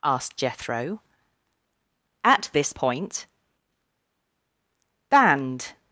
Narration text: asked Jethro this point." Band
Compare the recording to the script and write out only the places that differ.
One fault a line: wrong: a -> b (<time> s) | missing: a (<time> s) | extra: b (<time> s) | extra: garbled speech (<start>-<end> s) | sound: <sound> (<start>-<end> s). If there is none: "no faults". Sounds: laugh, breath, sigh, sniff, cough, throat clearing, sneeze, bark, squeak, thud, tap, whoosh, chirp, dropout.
extra: at (2.2 s)